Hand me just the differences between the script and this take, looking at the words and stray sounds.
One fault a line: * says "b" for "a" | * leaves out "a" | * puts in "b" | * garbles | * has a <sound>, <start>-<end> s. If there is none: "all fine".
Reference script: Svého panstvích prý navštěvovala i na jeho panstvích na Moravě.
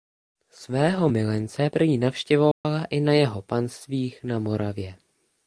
* says "milence" for "panstvích"
* has a dropout, 2.5-2.6 s